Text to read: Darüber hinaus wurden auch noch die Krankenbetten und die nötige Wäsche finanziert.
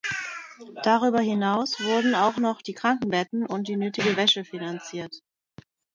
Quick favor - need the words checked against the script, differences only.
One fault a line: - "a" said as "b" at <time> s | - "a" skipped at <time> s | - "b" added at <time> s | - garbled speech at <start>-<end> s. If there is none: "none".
none